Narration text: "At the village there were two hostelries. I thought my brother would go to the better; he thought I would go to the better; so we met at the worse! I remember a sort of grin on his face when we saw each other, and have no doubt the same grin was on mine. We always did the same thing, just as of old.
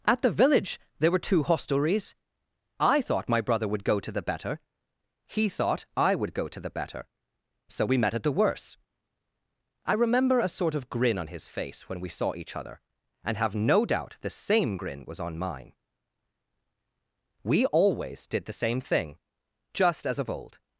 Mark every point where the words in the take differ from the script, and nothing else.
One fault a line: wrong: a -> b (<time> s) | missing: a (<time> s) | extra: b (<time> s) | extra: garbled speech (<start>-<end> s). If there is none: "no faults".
no faults